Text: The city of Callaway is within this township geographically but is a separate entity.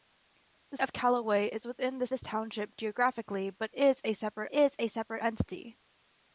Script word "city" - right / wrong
wrong